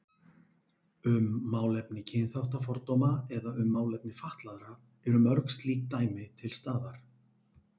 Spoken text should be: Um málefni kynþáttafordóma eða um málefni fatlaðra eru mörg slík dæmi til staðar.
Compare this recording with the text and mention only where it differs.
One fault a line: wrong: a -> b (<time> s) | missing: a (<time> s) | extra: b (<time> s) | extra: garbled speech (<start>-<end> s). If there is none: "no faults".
no faults